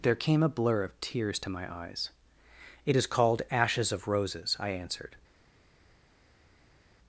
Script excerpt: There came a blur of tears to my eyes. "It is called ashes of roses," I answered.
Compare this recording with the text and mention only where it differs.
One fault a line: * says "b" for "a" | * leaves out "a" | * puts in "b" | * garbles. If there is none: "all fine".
all fine